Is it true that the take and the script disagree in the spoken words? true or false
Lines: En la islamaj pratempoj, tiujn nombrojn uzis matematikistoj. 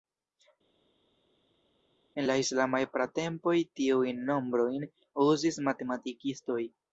false